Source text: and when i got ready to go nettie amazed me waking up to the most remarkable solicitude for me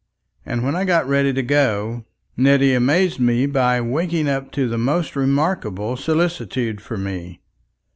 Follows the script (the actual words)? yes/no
no